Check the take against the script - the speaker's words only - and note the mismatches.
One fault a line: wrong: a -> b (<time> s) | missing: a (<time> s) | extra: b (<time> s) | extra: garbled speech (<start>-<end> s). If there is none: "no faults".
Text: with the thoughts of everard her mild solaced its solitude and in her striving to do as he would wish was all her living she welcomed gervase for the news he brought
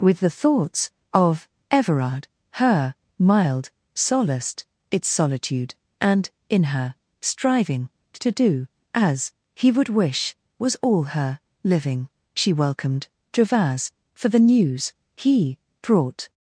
no faults